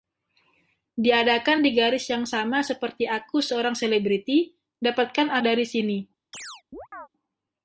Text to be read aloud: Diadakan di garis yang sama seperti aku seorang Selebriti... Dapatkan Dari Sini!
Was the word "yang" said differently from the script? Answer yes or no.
no